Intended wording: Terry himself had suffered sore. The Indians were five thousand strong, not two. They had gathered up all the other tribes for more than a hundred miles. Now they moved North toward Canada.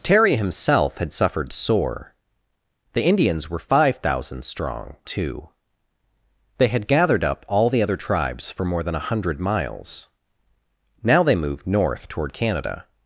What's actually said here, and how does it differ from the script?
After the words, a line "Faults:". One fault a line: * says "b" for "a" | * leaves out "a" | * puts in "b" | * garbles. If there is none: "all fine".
Terry himself had suffered sore. The Indians were five thousand strong, two. They had gathered up all the other tribes for more than a hundred miles. Now they moved North toward Canada.
Faults:
* leaves out "not"